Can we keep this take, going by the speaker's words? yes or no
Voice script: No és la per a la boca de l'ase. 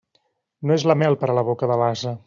no